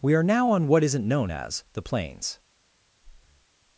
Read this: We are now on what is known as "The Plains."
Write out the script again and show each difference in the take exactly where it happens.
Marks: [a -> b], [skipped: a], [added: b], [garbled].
We are now on what [is -> isn't] known as "The Plains."